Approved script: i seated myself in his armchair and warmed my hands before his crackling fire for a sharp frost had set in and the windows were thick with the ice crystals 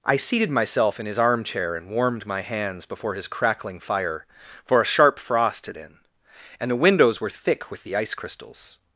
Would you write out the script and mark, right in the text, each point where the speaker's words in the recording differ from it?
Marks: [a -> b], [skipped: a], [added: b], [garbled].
i seated myself in his armchair and warmed my hands before his crackling fire for a sharp frost had [skipped: set] in and the windows were thick with the ice crystals